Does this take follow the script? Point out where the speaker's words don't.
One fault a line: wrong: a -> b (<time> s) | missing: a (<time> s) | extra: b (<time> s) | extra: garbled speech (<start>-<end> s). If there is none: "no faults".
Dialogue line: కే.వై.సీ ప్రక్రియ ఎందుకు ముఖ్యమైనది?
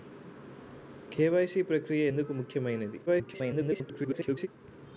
extra: garbled speech (3.1-4.5 s)